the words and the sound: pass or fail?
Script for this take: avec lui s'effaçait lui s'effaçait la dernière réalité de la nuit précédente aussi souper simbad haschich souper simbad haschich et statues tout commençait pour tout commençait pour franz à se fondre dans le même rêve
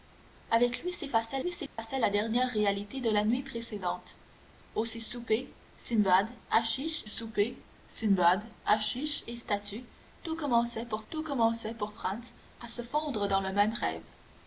fail